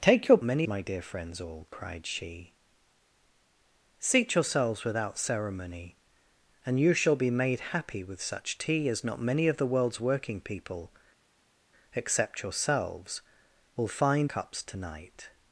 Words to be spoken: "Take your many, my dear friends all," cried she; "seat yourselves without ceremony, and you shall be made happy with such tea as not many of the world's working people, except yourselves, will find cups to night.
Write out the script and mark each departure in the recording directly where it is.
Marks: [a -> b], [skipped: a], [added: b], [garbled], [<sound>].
"Take your many, my dear friends all," cried she; "seat yourselves without ceremony, and you shall be made happy with such tea as not many of the world's working people, except yourselves, will find cups to night.